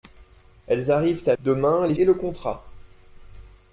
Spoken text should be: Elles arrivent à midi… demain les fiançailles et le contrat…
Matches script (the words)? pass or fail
fail